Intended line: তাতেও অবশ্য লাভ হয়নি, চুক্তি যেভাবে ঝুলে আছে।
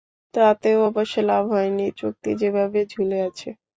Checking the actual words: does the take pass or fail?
pass